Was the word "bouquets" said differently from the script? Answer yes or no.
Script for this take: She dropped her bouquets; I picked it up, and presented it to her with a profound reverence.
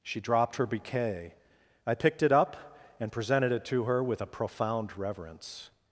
yes